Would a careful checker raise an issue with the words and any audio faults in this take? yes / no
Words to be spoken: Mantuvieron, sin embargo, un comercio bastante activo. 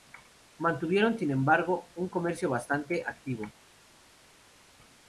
no